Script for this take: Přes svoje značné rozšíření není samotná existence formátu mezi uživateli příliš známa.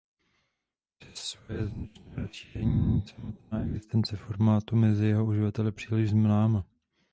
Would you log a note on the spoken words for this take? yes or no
yes